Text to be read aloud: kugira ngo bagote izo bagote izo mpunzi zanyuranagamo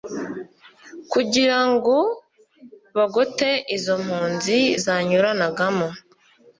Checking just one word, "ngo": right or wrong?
right